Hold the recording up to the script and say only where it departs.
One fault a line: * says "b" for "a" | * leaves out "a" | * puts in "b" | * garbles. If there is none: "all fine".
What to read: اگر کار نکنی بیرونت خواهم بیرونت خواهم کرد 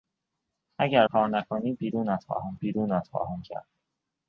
all fine